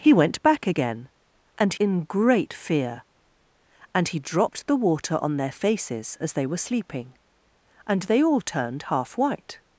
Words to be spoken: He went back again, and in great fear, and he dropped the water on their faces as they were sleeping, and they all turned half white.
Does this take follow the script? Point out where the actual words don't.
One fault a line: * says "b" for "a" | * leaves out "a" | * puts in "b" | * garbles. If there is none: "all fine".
all fine